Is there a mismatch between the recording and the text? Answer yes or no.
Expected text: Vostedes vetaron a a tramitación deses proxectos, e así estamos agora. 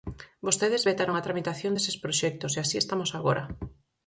yes